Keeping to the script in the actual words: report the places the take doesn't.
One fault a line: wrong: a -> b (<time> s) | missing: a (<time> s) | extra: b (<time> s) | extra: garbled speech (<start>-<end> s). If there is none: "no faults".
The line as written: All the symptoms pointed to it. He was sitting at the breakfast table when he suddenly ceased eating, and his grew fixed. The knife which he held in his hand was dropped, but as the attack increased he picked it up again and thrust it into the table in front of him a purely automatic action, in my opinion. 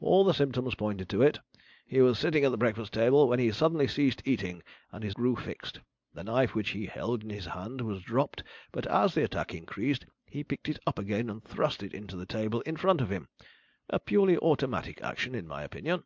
no faults